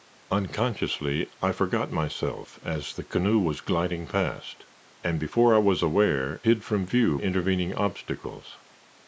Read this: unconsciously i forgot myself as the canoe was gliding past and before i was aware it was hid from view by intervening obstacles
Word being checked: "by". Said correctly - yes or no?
no